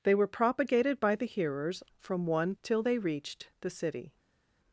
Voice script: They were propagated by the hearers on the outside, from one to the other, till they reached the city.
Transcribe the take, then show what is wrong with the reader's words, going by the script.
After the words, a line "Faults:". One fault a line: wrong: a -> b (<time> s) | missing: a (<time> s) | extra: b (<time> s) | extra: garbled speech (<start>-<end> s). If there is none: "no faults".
They were propagated by the hearers from one till they reached the city.
Faults:
missing: on the outside (1.8 s)
missing: to the other (2.5 s)